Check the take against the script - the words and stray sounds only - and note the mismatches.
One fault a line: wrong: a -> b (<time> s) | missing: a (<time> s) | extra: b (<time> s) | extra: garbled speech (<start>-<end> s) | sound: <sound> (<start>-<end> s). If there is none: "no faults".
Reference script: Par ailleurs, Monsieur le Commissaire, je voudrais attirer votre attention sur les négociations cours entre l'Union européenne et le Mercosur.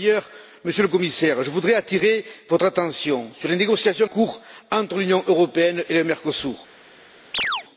sound: chirp (7.3-7.6 s)